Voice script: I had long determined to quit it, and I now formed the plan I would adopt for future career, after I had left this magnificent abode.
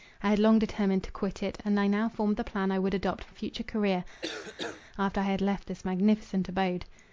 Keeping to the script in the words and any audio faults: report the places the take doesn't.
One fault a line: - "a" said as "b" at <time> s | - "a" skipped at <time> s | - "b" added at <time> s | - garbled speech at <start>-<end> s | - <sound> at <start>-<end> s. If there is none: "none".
- cough at 4.2-4.8 s